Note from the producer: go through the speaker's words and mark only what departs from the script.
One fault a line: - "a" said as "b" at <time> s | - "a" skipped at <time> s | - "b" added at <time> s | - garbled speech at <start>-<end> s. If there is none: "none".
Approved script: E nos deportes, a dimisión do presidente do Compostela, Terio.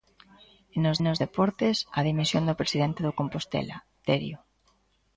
- "nos" added at 1.0 s